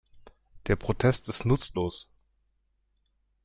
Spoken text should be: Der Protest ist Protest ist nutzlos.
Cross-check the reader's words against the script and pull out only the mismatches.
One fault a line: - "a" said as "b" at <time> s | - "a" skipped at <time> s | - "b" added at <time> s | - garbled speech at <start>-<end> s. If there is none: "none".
- "Protest ist" skipped at 1.4 s